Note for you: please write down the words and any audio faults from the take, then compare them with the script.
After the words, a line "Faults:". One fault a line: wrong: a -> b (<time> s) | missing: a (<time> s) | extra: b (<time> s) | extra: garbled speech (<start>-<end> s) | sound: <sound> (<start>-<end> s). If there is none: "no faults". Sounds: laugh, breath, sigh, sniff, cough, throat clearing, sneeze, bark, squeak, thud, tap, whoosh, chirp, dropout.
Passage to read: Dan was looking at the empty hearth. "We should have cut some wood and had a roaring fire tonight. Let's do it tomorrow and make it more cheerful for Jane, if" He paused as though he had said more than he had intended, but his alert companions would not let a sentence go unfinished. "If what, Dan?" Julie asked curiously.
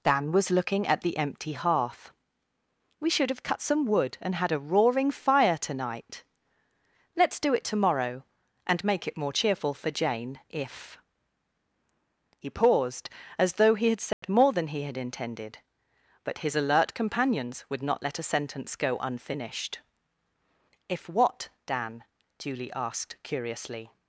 Dan was looking at the empty hearth. "We should have cut some wood and had a roaring fire tonight. Let's do it tomorrow and make it more cheerful for Jane, if" He paused as though he had said more than he had intended, but his alert companions would not let a sentence go unfinished. "If what, Dan?" Julie asked curiously.
Faults:
sound: dropout (14.1-14.2 s)